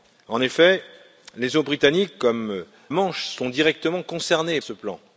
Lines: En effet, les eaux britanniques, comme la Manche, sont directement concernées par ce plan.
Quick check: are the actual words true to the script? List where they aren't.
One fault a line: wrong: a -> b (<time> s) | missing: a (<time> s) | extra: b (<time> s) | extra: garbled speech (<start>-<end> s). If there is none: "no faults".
missing: la (2.6 s)
missing: par (4.6 s)